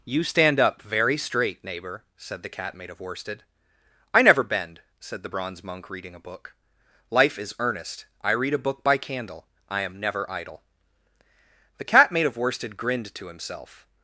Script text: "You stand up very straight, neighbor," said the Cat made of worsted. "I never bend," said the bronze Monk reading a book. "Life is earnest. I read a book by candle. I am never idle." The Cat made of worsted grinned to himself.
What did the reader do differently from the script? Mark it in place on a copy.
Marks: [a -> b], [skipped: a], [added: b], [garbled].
"You stand up very straight, neighbor," said the Cat made of worsted. "I never bend," said the bronze Monk reading a book. "Life is earnest. I read a book by candle. I am never idle." The Cat made of worsted grinned to himself.